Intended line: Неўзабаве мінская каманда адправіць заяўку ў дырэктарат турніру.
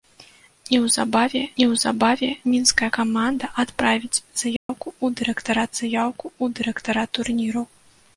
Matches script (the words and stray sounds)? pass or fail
fail